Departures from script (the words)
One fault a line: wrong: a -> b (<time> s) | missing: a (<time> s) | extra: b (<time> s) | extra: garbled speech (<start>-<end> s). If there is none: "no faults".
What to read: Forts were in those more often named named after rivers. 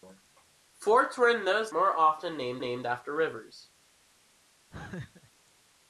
no faults